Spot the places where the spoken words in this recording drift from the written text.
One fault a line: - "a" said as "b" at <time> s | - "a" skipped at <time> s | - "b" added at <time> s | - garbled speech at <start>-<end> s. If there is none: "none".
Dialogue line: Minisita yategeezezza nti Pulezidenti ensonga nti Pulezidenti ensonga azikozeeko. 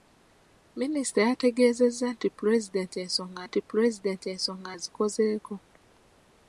none